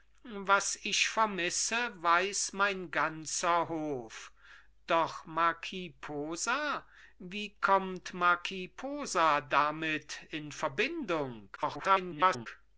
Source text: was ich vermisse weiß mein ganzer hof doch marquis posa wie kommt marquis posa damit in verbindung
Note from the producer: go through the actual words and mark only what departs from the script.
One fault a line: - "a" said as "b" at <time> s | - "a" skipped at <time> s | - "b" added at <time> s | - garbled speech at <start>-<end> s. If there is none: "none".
- garbled speech at 11.6-12.5 s